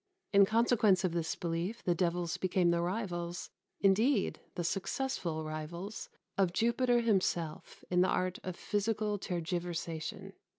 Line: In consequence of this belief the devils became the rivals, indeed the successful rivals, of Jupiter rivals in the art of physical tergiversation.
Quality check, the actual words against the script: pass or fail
fail